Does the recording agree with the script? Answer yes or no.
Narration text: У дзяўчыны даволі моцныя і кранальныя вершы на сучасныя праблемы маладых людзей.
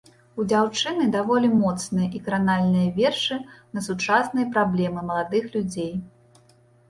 yes